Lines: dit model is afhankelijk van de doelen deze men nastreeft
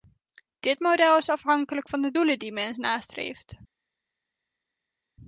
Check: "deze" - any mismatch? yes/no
yes